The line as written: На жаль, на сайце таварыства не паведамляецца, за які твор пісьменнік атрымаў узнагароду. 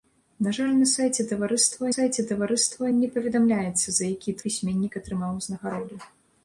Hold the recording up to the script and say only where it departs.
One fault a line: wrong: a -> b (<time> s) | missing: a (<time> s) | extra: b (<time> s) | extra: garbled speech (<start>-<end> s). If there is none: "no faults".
extra: сайце таварыства (1.9 s)
missing: твор (4.4 s)